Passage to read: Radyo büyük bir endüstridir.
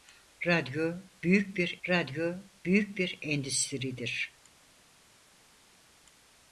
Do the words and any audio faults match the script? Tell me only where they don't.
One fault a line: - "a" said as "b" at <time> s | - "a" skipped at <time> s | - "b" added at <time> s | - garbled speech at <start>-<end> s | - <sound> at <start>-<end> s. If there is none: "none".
- "radyo büyük bir" added at 1.9 s